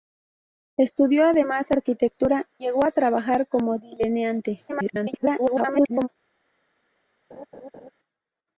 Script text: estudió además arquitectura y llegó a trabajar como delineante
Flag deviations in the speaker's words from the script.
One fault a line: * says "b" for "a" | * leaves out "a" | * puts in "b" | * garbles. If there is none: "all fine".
* leaves out "y"
* garbles